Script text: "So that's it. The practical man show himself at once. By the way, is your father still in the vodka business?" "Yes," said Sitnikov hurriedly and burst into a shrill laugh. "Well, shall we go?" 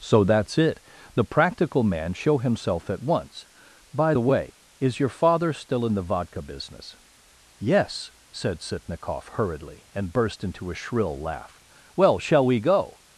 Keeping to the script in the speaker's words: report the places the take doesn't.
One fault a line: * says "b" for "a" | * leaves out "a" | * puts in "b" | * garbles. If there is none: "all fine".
all fine